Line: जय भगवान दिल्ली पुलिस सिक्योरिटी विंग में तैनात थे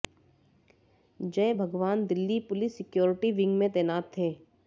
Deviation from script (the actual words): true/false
false